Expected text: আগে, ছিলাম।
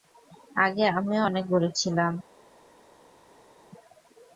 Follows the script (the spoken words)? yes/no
no